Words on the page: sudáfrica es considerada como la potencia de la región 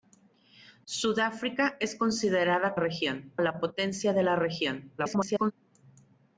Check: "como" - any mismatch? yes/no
yes